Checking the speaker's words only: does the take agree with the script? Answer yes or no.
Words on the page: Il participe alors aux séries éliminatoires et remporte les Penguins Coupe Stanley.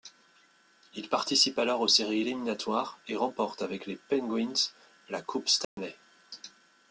no